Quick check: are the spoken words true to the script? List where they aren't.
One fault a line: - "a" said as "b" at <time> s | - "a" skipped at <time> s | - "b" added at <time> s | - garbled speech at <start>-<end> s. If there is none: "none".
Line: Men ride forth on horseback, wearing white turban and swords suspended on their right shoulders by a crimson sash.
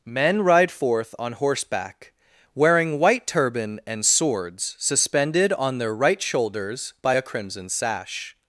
none